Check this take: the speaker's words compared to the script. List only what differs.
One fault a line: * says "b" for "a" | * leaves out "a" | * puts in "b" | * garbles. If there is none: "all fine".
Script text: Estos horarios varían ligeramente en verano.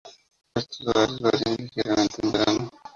all fine